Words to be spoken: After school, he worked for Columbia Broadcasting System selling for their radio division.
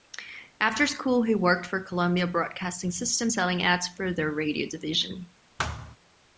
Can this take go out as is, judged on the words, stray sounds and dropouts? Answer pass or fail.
fail